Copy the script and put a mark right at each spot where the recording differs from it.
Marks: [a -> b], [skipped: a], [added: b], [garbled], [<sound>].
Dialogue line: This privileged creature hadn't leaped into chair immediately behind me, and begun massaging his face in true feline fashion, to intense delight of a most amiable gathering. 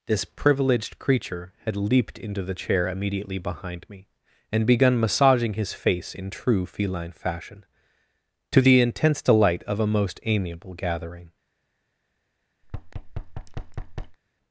This privileged creature [hadn't -> had] leaped into [added: the] chair immediately behind me, and begun massaging his face in true feline fashion, to [added: the] intense delight of a most amiable gathering. [thud]